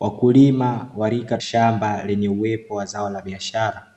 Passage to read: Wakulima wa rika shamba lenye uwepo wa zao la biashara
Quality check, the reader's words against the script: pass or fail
pass